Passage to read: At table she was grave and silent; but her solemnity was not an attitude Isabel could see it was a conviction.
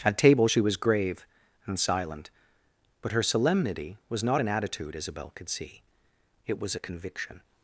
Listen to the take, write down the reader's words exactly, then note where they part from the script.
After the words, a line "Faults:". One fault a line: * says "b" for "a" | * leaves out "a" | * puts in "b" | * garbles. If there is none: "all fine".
At table she was grave and silent; but her solemnity was not an attitude Isabel could see it was a conviction.
Faults:
all fine